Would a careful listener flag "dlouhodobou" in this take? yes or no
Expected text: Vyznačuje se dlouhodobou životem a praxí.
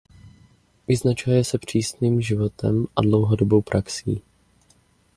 yes